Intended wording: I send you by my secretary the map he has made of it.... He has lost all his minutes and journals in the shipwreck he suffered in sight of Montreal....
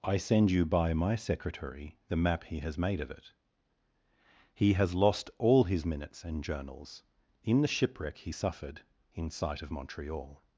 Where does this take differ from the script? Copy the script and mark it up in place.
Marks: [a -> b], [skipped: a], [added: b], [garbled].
I send you by my secretary the map he has made of it.... He has lost all his minutes and journals in the shipwreck he suffered in sight of Montreal....